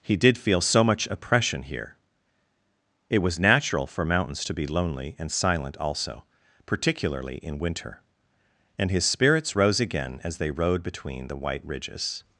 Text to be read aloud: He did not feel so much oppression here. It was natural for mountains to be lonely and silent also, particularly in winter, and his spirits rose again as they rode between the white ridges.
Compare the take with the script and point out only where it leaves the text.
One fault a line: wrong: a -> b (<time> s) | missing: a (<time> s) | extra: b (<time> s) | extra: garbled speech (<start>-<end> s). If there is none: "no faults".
missing: not (0.4 s)